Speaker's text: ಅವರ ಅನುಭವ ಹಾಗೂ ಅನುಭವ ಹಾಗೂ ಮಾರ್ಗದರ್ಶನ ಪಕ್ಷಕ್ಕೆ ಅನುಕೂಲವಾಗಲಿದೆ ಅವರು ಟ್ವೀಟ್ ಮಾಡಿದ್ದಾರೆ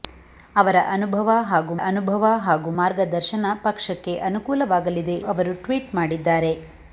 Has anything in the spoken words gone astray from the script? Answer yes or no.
no